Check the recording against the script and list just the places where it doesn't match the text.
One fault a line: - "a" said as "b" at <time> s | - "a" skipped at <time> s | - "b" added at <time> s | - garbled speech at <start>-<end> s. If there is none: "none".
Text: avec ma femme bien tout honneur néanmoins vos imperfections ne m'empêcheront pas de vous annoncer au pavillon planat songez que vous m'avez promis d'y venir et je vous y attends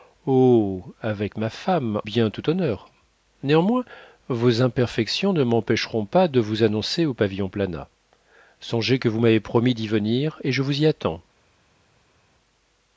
none